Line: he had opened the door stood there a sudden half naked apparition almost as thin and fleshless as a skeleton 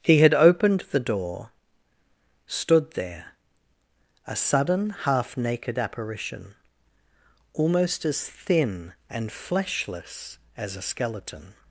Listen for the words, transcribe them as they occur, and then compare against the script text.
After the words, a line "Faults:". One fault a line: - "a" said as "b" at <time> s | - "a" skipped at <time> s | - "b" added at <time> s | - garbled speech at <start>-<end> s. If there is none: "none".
he had opened the door stood there a sudden half naked apparition almost as thin and fleshless as a skeleton
Faults:
none